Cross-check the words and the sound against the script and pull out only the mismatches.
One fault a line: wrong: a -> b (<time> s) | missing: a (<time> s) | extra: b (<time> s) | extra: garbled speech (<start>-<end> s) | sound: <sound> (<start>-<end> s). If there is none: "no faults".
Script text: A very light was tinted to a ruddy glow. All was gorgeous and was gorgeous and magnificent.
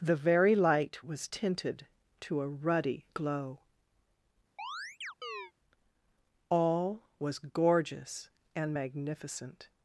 wrong: A -> The (0.0 s)
sound: chirp (4.6-5.5 s)
missing: was gorgeous and (8.7 s)